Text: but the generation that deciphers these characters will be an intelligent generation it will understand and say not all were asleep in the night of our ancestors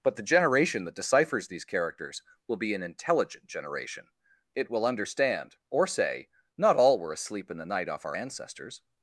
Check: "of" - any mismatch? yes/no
yes